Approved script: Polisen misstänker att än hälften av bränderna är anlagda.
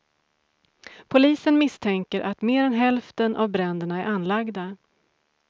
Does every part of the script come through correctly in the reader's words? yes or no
no